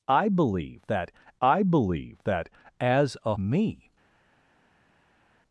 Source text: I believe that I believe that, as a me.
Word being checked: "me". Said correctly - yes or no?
yes